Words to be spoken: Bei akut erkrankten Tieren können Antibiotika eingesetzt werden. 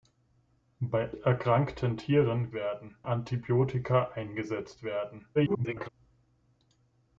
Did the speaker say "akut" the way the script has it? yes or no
no